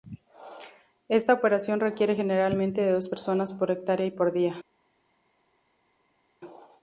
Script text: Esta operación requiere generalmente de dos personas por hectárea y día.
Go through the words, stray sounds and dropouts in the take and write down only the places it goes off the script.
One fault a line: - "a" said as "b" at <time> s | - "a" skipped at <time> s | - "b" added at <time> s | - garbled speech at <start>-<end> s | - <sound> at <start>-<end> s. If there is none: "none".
- "por" added at 4.1 s